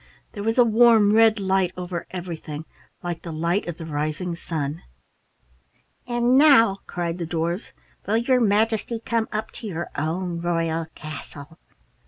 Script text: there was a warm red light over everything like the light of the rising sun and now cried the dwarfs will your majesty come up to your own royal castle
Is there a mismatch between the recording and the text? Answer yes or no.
no